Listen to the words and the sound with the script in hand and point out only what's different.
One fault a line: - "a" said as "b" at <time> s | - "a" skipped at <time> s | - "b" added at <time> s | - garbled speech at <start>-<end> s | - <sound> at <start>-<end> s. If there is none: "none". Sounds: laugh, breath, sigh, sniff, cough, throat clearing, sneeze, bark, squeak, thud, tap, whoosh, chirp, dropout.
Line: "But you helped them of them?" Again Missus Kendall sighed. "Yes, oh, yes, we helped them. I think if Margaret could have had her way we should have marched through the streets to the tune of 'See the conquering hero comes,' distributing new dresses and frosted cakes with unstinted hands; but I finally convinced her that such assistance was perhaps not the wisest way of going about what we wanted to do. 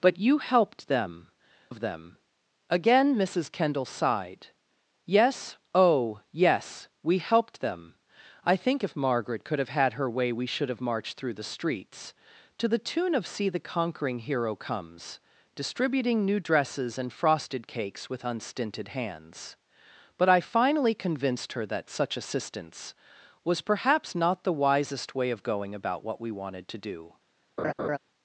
- laugh at 27.6-28.0 s